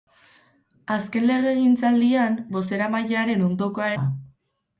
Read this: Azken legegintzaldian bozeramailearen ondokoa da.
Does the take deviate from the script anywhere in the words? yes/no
no